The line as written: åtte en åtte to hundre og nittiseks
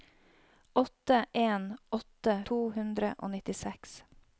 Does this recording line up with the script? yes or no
yes